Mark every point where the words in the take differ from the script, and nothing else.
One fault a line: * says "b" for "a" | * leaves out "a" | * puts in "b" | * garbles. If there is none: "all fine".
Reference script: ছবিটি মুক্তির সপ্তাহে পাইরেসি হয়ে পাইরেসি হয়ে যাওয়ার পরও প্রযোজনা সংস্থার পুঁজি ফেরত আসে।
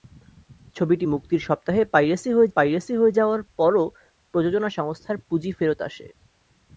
all fine